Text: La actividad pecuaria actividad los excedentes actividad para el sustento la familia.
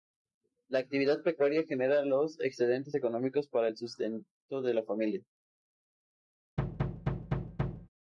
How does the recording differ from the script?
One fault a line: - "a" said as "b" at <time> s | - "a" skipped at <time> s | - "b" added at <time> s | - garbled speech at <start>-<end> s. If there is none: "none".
- "actividad" said as "genera" at 1.6 s
- "actividad" said as "económicos" at 2.9 s
- "de" added at 4.6 s